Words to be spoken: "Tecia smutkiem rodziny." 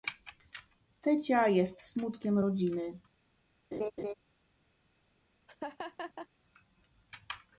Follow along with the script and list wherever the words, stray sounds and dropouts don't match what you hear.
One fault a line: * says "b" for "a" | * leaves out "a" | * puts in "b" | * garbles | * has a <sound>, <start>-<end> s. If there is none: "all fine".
* puts in "jest"
* has a laugh, 3.7-4.1 s
* has a laugh, 5.5-6.3 s